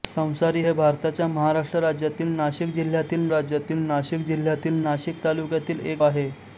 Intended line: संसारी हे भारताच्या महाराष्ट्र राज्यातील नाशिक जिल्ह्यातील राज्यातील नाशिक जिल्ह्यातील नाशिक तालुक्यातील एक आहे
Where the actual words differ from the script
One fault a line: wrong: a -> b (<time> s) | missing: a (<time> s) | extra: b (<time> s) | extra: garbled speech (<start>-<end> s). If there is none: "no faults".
no faults